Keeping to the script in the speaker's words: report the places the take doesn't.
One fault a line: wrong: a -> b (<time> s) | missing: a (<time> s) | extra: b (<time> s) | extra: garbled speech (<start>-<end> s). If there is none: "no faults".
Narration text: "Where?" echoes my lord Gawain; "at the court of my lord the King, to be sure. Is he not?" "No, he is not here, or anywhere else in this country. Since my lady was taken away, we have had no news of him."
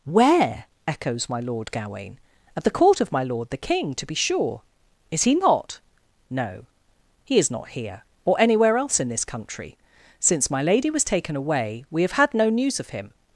no faults